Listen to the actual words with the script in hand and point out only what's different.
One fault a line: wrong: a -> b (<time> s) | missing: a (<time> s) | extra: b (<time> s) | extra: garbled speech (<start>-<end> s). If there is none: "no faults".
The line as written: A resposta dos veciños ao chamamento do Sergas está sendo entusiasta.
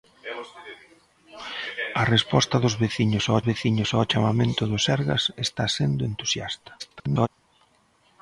extra: veciños ao (3.5 s)
extra: garbled speech (6.8-7.3 s)